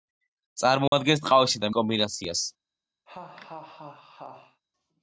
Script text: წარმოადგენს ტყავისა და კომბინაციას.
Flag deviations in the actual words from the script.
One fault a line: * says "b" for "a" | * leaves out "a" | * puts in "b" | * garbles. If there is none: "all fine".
all fine